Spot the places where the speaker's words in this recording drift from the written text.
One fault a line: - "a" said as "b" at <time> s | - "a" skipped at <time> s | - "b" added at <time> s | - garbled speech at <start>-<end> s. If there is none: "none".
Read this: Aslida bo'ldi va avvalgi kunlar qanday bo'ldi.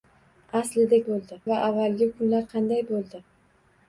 none